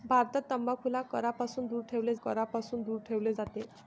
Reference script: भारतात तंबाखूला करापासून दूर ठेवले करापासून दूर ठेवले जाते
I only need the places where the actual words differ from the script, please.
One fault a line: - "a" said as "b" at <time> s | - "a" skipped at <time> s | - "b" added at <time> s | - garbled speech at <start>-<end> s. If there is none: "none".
none